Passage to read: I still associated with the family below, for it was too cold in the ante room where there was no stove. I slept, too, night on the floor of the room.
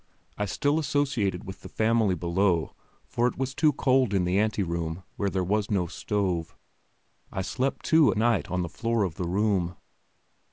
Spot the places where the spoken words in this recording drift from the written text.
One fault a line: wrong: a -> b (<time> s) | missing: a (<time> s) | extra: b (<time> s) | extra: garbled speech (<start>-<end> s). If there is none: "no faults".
no faults